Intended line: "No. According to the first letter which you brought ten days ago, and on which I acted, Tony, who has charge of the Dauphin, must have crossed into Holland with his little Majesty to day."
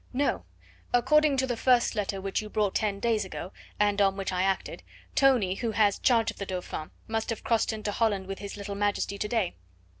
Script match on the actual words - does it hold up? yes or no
yes